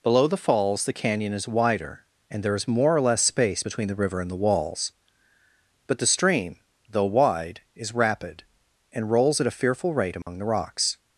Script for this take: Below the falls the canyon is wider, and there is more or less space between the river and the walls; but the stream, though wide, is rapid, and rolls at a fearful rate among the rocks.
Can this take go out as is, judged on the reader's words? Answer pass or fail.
pass